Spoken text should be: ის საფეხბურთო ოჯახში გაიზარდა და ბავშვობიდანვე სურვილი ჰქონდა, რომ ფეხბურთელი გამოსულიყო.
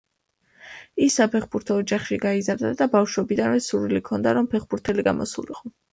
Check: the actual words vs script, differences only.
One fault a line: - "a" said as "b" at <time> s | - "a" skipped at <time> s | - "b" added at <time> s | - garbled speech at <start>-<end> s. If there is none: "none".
none